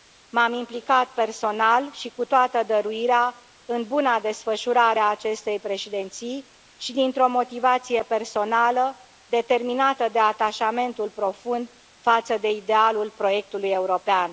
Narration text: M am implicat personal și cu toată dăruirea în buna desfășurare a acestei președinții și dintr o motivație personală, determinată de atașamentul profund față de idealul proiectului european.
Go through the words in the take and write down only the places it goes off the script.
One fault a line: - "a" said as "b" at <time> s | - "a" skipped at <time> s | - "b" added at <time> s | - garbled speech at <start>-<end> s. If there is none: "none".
none